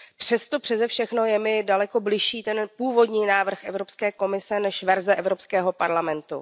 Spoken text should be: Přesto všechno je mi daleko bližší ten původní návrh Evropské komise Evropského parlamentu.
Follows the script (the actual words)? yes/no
no